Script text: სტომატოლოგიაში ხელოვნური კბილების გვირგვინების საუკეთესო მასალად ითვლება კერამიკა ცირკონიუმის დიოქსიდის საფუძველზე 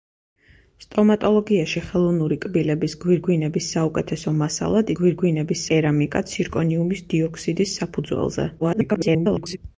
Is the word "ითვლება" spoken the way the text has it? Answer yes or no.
no